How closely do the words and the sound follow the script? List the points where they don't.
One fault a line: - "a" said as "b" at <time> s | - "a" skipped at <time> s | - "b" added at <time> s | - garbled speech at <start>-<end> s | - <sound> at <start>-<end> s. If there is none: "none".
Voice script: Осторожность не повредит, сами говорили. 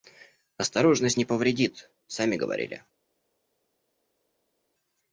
none